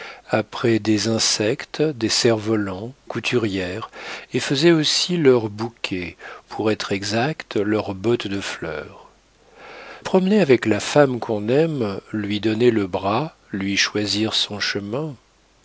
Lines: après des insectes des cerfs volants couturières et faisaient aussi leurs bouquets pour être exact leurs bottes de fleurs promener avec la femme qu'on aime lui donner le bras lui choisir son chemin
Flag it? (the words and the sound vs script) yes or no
no